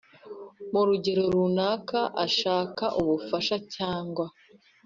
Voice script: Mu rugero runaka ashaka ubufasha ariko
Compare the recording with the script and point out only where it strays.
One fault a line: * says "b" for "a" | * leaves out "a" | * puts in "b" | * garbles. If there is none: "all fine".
* says "cyangwa" for "ariko"